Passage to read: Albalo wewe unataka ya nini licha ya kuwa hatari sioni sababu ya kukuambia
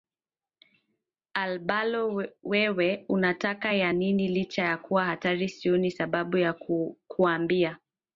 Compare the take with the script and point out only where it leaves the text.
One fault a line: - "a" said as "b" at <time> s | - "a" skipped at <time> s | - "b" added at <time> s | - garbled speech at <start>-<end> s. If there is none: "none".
none